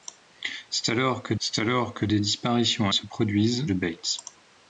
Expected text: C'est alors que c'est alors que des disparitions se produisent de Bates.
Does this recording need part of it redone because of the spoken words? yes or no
no